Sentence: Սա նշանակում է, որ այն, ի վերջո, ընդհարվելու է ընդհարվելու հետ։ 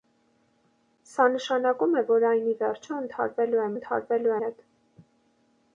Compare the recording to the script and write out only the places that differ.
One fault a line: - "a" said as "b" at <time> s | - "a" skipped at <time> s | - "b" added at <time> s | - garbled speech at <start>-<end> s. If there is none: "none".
none